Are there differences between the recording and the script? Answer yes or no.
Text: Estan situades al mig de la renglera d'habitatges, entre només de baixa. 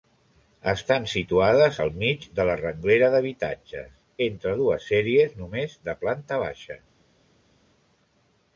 yes